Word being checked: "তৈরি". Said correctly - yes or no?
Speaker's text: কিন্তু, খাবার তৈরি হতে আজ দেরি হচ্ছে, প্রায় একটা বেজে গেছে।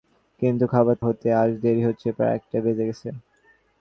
no